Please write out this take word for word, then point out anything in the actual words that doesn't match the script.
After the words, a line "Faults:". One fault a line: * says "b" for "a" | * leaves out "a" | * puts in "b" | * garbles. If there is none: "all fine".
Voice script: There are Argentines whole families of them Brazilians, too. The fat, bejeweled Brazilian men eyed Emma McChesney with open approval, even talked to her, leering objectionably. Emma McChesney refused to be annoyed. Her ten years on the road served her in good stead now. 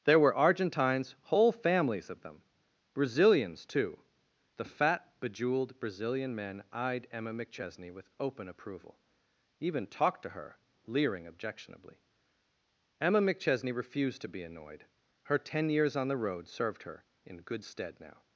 There were Argentines whole families of them Brazilians, too. The fat, bejeweled Brazilian men eyed Emma McChesney with open approval, even talked to her, leering objectionably. Emma McChesney refused to be annoyed. Her ten years on the road served her in good stead now.
Faults:
* says "were" for "are"